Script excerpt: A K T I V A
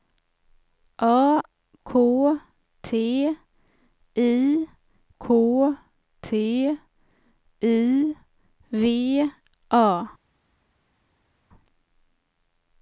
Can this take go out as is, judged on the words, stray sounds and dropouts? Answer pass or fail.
fail